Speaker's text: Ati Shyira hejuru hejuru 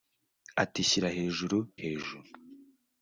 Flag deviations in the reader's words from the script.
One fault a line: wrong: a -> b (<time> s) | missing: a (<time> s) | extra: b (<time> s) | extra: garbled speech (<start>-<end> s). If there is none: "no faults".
no faults